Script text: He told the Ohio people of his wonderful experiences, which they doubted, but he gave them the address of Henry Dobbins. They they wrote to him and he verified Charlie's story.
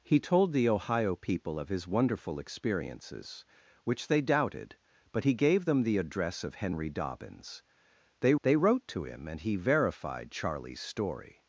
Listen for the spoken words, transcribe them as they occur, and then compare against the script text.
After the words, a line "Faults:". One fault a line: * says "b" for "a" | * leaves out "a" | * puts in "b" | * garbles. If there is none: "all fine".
He told the Ohio people of his wonderful experiences, which they doubted, but he gave them the address of Henry Dobbins. They they wrote to him and he verified Charlie's story.
Faults:
all fine